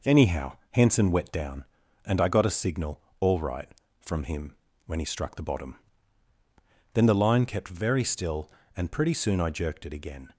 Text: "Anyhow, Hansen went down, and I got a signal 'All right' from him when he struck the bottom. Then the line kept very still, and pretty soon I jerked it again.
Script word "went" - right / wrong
wrong